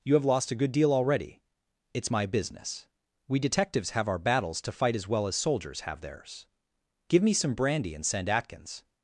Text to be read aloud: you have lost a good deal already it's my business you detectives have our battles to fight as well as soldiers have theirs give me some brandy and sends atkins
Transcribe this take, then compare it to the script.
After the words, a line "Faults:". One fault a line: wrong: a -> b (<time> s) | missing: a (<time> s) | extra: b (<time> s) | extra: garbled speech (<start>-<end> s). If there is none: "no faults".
you have lost a good deal already it's my business we detectives have our battles to fight as well as soldiers have theirs give me some brandy and send atkins
Faults:
wrong: you -> we (3.3 s)
wrong: sends -> send (8.1 s)